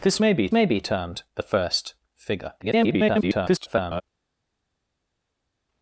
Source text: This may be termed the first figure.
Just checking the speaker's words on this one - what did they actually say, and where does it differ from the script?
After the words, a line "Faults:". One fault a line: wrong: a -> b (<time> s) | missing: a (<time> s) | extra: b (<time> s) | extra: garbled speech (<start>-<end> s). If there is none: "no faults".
This may be may be termed the first figure. [garbled]
Faults:
extra: may be (0.5 s)
extra: garbled speech (2.6-4.0 s)